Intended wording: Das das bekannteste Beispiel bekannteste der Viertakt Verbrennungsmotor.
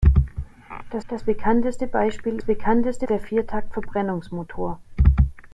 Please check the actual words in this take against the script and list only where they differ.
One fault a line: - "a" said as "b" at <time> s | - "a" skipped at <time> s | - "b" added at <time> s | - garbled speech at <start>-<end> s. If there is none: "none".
none